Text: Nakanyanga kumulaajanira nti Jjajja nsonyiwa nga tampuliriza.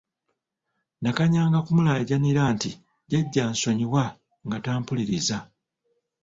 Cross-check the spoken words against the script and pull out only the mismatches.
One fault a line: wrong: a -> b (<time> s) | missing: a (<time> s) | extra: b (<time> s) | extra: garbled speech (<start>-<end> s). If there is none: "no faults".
no faults